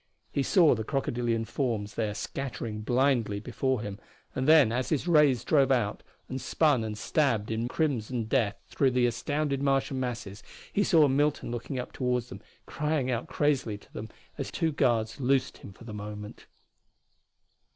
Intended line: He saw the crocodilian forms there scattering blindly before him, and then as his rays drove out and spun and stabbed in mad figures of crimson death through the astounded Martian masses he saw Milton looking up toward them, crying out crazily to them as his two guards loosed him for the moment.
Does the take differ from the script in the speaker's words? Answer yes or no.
yes